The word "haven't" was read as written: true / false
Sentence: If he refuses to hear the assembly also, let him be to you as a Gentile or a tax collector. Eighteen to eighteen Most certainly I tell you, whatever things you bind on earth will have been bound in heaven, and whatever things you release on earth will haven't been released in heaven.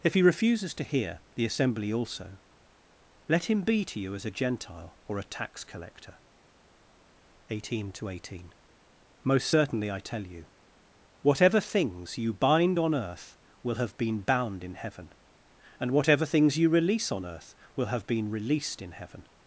false